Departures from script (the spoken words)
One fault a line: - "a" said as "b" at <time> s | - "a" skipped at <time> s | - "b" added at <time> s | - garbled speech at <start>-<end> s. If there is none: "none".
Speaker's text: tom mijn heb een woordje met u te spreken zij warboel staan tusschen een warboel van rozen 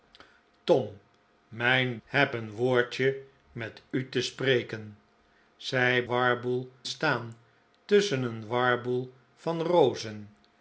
none